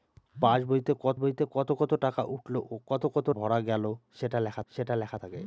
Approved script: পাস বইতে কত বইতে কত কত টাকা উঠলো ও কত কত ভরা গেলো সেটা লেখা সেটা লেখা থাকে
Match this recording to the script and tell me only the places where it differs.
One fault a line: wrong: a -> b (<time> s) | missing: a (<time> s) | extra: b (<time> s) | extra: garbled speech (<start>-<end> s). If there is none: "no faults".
no faults